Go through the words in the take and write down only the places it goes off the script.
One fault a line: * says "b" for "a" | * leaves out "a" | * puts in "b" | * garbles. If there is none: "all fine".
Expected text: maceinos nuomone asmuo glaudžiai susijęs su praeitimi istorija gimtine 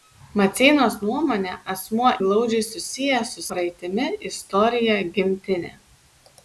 all fine